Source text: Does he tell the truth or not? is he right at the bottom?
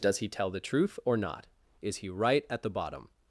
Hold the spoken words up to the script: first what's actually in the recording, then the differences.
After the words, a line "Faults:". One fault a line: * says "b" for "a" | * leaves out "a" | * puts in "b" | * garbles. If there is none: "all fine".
Does he tell the truth or not? is he right at the bottom?
Faults:
all fine